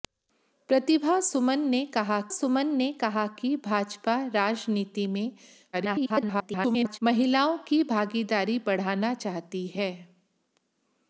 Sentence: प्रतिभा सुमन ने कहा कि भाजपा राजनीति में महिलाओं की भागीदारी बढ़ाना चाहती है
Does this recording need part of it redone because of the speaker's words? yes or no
yes